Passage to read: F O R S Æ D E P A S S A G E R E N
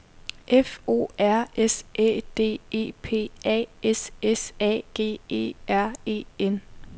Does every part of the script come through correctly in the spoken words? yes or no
yes